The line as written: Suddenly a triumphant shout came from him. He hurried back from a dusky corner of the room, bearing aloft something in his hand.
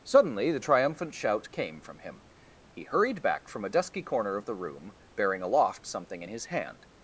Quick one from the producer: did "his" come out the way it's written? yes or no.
yes